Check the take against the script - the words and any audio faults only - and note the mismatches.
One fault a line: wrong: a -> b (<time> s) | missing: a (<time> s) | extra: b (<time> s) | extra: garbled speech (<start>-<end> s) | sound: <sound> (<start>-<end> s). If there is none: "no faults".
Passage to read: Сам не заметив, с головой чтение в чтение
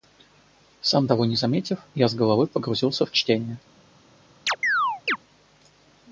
extra: того (1.1 s)
extra: я (1.9 s)
wrong: чтение -> погрузился (2.5 s)
sound: chirp (4.5-5.2 s)